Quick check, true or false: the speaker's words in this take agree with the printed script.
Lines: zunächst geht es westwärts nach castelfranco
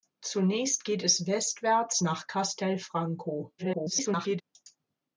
false